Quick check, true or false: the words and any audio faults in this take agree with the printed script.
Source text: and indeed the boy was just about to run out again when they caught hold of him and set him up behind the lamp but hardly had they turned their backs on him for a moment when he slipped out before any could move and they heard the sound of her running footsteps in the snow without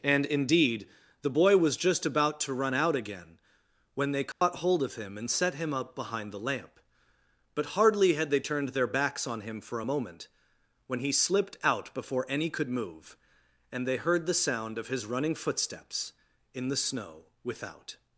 false